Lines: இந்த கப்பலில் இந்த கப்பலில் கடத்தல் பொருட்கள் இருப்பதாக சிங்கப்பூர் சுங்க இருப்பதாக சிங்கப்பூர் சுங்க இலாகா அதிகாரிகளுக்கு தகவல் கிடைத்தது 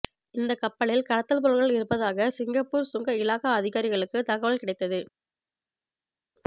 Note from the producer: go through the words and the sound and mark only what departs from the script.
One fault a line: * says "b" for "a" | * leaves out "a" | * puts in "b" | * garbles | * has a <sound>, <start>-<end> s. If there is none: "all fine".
* leaves out "இந்த கப்பலில்"
* leaves out "இருப்பதாக சிங்கப்பூர் சுங்க"